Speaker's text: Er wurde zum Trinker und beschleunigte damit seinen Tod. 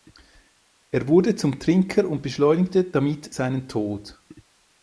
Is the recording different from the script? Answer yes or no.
no